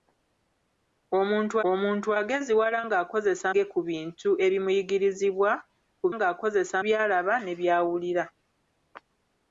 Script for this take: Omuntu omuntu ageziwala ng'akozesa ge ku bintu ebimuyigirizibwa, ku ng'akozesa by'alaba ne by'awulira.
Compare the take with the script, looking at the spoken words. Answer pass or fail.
pass